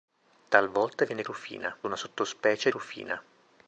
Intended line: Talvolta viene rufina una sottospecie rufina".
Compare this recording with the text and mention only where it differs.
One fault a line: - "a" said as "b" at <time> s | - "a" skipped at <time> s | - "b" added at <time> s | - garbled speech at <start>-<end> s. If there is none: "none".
none